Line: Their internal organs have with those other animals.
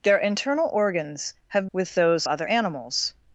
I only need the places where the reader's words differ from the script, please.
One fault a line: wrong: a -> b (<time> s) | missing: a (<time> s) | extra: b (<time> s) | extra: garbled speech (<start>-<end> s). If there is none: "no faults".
no faults